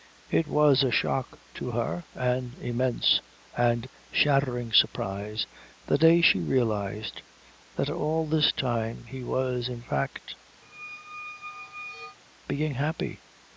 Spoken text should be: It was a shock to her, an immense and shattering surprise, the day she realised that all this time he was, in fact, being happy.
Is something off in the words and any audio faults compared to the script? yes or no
yes